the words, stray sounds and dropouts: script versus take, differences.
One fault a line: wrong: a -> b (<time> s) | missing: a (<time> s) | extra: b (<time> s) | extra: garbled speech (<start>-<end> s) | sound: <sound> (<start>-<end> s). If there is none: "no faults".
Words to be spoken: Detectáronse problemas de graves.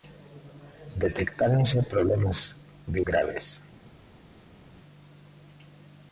no faults